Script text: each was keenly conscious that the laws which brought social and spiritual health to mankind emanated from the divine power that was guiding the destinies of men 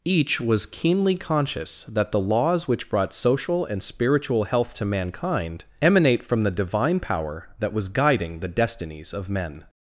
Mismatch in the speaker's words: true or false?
true